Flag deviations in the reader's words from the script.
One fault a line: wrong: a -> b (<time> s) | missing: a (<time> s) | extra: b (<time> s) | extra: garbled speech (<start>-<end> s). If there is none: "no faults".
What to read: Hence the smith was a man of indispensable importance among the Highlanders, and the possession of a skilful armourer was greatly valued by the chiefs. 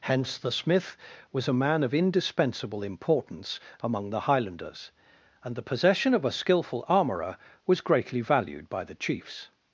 no faults